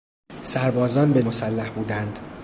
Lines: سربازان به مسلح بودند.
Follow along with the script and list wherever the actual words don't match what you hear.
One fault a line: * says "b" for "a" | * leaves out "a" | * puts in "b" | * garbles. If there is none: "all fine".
all fine